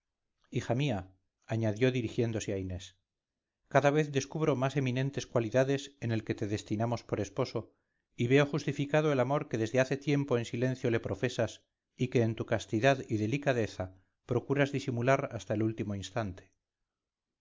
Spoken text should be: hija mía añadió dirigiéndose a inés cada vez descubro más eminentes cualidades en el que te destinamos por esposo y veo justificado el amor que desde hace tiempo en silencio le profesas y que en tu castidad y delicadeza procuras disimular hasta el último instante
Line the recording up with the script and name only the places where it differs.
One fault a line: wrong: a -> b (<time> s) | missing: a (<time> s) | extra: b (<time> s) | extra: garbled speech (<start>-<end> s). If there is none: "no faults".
no faults